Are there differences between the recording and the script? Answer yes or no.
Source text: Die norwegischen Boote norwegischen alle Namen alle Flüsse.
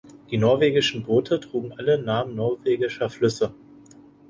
yes